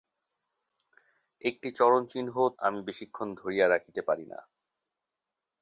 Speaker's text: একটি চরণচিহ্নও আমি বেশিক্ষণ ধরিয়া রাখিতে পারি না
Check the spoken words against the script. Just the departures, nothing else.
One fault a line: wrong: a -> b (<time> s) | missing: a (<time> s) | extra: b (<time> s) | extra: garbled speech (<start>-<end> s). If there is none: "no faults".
no faults